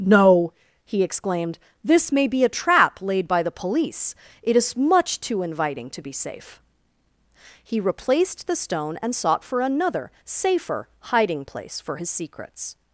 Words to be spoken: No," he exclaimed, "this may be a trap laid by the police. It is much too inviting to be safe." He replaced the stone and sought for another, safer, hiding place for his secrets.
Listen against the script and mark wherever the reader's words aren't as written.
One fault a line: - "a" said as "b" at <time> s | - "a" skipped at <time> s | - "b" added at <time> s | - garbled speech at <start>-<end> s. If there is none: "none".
none